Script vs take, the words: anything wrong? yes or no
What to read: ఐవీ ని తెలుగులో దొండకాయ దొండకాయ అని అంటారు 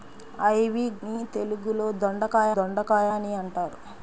no